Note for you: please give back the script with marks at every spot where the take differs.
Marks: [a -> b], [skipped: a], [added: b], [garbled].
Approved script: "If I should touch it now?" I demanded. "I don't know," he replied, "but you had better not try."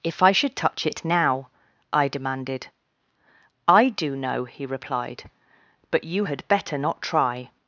"If I should touch it now?" I demanded. "I [don't -> do] know," he replied, "but you had better not try."